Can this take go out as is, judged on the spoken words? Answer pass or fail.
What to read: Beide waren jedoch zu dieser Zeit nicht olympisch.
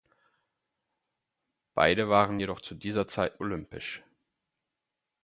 fail